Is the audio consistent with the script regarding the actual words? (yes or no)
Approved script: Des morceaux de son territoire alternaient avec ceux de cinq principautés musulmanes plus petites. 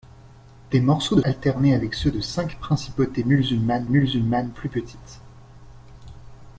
no